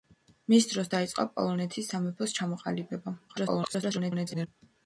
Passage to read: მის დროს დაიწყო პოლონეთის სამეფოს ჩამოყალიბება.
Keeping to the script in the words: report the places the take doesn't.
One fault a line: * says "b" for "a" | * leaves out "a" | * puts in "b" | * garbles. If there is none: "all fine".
* garbles